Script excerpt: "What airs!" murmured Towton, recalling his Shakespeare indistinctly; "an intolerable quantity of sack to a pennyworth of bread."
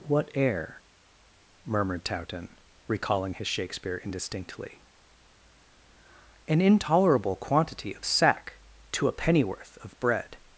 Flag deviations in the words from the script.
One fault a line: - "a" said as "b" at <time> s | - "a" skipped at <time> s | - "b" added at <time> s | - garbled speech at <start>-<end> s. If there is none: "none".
- "airs" said as "air" at 0.3 s